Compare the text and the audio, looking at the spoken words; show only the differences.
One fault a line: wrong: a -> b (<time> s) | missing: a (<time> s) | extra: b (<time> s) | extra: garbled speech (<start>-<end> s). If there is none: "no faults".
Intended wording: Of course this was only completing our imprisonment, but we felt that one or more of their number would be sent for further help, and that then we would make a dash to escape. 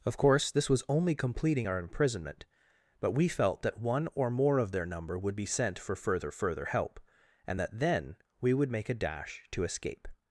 extra: further (6.3 s)